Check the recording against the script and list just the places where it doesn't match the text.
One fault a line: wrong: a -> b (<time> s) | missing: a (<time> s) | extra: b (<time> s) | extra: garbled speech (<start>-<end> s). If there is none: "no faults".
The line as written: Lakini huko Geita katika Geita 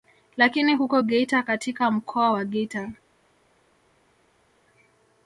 extra: mkoa wa (1.9 s)